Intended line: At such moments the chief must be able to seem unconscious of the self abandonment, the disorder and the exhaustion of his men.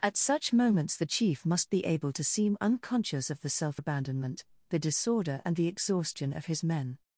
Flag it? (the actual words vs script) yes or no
no